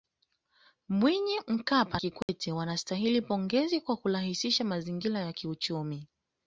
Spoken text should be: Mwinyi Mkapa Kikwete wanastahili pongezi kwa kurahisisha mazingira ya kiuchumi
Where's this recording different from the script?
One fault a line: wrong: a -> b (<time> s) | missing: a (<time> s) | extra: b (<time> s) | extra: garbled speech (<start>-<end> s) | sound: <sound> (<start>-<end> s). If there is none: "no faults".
sound: dropout (2.2-2.3 s)